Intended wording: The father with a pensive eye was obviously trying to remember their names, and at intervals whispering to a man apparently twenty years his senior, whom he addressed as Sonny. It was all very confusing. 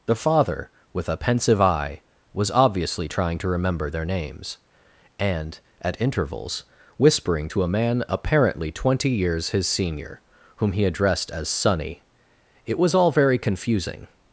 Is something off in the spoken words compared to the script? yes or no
no